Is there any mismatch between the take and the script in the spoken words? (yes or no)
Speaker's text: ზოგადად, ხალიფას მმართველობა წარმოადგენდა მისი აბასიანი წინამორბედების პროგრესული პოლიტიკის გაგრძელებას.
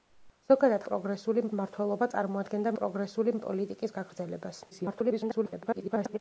yes